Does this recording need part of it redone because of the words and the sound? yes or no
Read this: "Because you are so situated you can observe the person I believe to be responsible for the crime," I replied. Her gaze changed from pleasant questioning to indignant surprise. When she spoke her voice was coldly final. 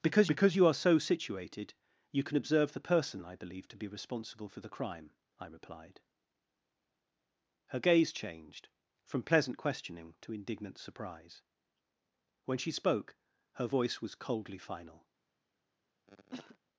yes